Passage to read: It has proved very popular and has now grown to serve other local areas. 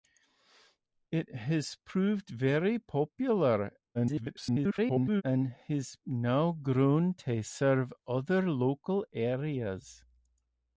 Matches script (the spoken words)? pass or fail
fail